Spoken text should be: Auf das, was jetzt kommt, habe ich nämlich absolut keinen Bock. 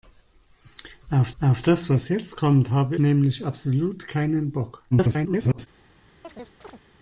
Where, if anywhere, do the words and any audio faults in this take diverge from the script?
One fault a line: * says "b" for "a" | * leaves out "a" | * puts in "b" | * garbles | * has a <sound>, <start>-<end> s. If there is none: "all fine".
* puts in "auf"
* leaves out "ich"
* garbles
* has a chirp, 6.2-6.8 s